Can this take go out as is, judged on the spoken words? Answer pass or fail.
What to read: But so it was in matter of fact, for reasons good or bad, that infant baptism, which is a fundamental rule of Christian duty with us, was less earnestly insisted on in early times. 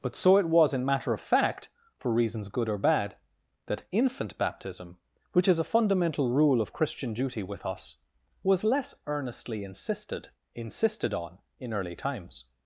fail